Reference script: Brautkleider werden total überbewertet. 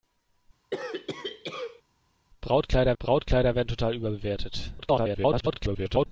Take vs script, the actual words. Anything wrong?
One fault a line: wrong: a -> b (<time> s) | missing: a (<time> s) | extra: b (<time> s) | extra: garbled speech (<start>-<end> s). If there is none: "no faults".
extra: brautkleider (3.0 s)
extra: garbled speech (4.8-6.1 s)